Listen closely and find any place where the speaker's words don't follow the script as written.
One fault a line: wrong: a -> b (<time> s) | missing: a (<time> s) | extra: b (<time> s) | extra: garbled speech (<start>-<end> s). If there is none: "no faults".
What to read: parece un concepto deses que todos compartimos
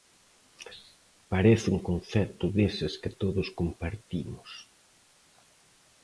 no faults